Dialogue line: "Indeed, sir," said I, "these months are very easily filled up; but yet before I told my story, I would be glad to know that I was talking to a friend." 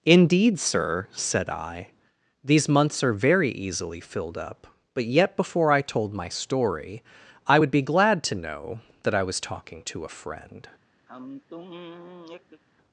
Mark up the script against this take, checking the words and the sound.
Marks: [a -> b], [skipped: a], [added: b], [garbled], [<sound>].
"Indeed, sir," said I, "these months are very easily filled up; but yet before I told my story, I would be glad to know that I was talking to a friend." [sigh]